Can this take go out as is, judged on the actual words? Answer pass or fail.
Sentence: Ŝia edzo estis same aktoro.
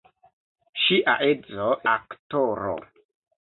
fail